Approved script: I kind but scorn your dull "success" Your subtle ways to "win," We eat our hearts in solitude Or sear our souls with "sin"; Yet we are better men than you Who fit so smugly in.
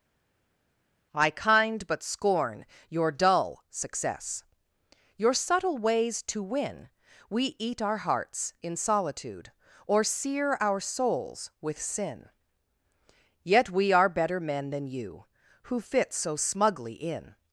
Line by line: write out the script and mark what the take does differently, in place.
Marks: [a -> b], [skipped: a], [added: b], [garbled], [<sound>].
I kind but scorn your dull "success" Your subtle ways to "win," We eat our hearts in solitude Or sear our souls with "sin"; Yet we are better men than you Who fit so smugly in.